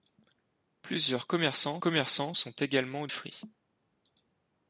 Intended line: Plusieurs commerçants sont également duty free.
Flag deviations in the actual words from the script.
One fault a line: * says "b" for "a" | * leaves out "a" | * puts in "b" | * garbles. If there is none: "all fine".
* puts in "commerçants"
* leaves out "duty"